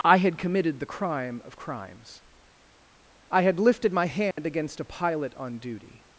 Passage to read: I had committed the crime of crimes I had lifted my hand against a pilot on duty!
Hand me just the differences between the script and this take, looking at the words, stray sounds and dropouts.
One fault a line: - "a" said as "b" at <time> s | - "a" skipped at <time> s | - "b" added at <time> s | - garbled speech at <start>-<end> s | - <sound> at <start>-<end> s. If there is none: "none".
- dropout at 4.3-4.4 s